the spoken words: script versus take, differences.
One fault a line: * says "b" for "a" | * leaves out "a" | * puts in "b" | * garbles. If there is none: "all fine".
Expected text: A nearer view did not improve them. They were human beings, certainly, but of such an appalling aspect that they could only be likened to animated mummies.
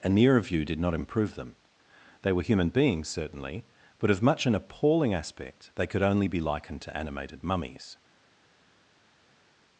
* says "much" for "such"
* leaves out "that"